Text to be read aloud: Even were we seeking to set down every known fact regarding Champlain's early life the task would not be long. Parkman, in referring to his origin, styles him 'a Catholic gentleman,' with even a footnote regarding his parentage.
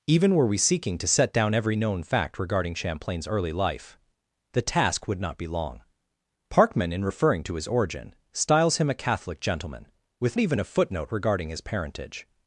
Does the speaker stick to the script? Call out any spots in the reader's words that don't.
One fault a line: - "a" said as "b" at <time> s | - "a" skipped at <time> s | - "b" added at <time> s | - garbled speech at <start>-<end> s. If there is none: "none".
none